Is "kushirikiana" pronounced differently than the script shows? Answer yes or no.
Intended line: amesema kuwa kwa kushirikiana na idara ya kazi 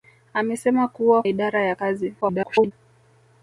yes